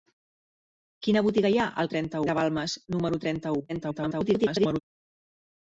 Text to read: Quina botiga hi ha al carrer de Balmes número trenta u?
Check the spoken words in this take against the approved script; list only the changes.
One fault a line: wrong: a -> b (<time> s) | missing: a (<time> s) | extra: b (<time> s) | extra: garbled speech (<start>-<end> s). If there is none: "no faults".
wrong: carrer -> trenta (1.9 s)
extra: garbled speech (3.7-4.8 s)